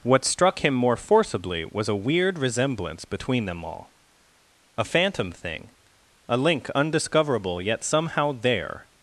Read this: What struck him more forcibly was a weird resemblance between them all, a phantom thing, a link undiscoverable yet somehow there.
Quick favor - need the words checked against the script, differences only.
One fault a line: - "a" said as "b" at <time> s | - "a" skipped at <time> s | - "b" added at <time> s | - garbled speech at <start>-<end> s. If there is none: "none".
none